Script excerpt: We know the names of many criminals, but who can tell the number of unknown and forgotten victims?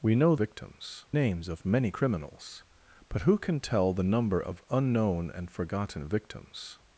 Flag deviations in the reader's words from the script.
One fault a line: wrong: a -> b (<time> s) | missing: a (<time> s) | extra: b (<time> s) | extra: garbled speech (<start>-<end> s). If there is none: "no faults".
wrong: the -> victims (0.3 s)